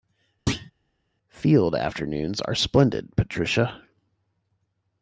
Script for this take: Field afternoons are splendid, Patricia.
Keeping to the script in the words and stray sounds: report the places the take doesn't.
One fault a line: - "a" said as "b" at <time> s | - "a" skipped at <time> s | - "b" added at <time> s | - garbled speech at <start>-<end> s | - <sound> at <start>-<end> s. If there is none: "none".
- thud at 0.5-0.7 s